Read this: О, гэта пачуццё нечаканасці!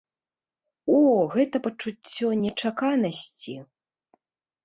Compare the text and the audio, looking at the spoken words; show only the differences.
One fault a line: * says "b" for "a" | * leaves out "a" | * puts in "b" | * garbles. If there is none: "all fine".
all fine